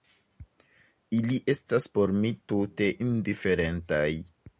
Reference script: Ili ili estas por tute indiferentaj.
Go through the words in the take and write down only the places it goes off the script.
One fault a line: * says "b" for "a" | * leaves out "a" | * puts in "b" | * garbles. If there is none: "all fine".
* leaves out "ili"
* puts in "mi"